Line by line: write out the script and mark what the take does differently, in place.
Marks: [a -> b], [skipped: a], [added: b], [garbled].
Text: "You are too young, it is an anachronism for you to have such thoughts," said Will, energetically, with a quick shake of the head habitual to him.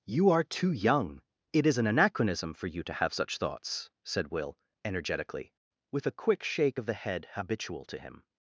"You are too young, it is an anachronism for you to have such thoughts," said Will, energetically, with a quick shake of the head habitual to him.